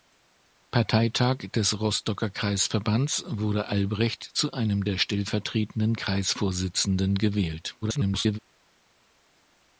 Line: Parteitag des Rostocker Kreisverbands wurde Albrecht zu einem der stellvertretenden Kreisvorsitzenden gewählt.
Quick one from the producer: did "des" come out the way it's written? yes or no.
yes